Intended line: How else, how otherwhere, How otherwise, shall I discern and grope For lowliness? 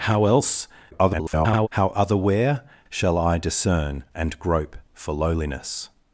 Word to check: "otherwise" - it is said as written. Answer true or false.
false